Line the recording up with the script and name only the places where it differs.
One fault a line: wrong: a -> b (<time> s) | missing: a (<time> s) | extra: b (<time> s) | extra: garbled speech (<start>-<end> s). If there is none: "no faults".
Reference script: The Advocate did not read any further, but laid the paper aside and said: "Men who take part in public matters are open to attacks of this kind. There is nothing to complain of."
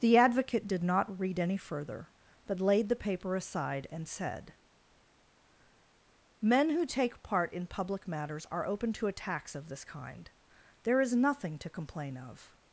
no faults